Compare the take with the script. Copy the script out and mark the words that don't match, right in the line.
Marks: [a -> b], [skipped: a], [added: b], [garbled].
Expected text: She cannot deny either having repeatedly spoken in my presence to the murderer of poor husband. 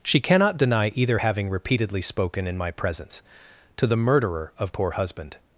She cannot deny either having repeatedly spoken in my presence to the murderer of poor husband.